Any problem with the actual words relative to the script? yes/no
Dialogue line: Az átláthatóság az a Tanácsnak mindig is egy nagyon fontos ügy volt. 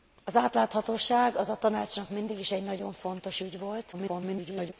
yes